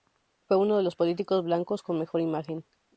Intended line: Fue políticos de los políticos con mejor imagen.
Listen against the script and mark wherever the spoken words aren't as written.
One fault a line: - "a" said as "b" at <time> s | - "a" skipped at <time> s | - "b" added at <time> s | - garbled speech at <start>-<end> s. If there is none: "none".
- "políticos" said as "uno" at 0.6 s
- "blancos" added at 1.4 s